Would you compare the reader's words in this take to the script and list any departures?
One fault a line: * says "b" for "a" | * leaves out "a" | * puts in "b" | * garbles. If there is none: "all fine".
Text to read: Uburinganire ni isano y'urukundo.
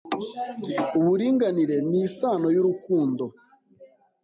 all fine